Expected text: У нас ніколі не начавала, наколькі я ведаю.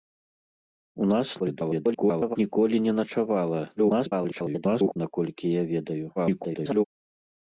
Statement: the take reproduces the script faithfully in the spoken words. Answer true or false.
false